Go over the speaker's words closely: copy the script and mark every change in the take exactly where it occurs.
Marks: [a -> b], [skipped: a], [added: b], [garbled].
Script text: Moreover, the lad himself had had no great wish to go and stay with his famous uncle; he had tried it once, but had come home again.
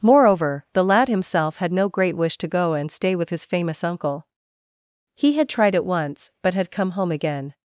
Moreover, the lad himself had [skipped: had] no great wish to go and stay with his famous uncle; he had tried it once, but had come home again.